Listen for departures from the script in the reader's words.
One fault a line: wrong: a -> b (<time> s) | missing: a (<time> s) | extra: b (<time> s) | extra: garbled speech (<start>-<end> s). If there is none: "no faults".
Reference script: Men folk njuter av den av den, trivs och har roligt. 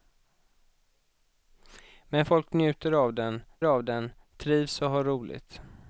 no faults